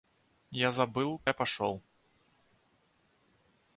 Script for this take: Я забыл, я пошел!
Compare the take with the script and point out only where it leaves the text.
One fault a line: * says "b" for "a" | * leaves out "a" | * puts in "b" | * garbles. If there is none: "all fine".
all fine